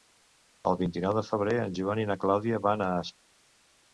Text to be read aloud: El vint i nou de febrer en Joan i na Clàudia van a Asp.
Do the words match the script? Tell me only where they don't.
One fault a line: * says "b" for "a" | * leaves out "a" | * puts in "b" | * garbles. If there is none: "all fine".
all fine